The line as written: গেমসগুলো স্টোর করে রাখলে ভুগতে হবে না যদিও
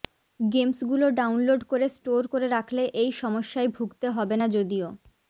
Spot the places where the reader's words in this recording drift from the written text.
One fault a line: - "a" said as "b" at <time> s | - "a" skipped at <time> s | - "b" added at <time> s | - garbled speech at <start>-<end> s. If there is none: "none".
- "ডাউনলোড করে" added at 1.2 s
- "এই সমস্যায়" added at 3.0 s